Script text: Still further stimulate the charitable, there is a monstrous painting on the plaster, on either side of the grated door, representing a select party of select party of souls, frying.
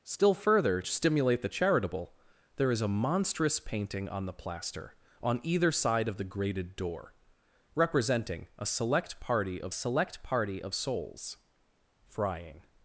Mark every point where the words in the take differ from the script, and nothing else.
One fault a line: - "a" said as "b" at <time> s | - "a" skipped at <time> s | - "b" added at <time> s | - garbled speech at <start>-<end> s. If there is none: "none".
none